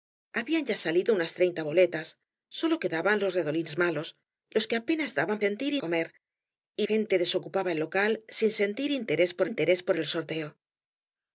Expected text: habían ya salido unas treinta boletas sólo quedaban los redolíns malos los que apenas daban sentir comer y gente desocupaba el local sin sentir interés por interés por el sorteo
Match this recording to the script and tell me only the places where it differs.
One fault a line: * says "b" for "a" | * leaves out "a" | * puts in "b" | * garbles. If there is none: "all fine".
all fine